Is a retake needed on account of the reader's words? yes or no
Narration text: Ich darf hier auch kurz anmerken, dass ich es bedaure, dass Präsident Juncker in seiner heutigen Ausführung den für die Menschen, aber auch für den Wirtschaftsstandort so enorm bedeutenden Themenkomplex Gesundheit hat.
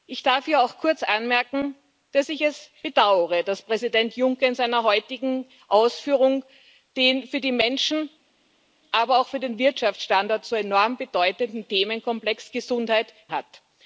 no